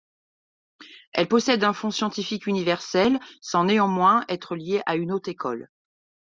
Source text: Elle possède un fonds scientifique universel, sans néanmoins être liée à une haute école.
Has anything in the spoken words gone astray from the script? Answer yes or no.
no